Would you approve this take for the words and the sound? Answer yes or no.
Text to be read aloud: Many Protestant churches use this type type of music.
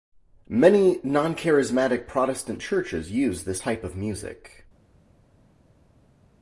no